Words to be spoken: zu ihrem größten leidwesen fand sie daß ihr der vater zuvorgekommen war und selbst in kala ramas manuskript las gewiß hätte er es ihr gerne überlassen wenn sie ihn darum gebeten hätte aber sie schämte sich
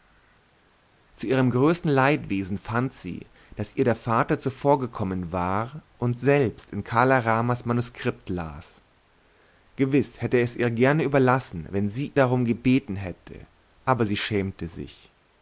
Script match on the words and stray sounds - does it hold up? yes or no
no